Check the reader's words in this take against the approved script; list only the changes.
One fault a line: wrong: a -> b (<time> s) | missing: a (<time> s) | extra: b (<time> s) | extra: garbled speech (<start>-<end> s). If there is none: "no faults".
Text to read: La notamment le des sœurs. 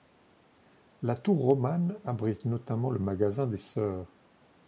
extra: tour romane abrite (1.1 s)
extra: magasin (3.0 s)